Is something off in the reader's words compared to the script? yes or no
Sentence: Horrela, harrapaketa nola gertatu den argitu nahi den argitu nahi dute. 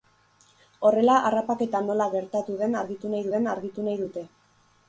no